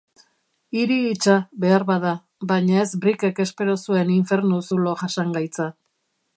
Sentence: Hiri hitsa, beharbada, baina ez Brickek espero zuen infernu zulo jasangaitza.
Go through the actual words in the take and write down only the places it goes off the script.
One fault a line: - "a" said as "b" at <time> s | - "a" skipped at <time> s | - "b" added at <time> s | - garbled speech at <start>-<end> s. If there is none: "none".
none